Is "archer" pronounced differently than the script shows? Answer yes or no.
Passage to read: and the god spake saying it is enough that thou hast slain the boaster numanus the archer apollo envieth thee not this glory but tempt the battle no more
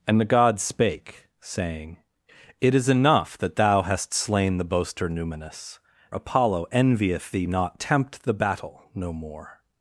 yes